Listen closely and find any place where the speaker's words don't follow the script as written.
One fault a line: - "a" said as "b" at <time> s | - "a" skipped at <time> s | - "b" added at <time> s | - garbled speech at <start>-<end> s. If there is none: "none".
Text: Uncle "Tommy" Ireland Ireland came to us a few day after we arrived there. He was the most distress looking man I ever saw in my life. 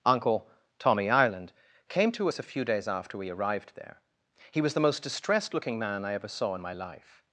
- "Ireland" skipped at 1.5 s
- "day" said as "days" at 2.6 s
- "distress" said as "distressed" at 5.0 s